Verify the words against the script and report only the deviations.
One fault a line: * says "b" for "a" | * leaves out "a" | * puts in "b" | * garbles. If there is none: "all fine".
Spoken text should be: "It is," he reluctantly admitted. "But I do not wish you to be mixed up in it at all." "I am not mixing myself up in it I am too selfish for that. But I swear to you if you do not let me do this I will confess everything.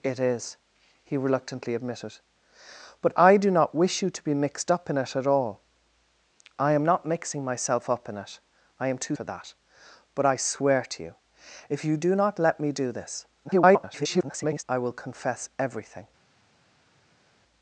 * leaves out "selfish"
* garbles